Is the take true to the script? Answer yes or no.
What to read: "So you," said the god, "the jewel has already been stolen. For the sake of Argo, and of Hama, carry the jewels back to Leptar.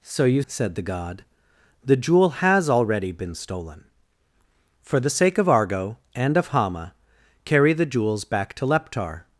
yes